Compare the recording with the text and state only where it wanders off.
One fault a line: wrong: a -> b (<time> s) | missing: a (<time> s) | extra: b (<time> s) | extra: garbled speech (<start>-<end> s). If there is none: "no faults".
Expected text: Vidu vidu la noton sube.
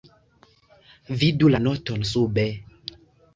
missing: vidu (1.5 s)